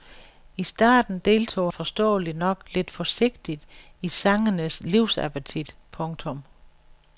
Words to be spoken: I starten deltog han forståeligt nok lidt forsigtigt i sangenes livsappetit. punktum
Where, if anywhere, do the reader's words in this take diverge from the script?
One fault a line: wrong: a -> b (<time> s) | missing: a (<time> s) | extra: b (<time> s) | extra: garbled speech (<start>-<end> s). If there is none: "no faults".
missing: han (1.7 s)